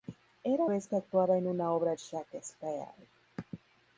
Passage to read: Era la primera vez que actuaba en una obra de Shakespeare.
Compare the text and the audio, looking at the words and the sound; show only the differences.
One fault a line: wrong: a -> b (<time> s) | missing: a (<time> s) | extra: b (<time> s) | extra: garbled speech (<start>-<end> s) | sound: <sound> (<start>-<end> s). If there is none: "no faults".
missing: la primera (0.7 s)
missing: de (2.0 s)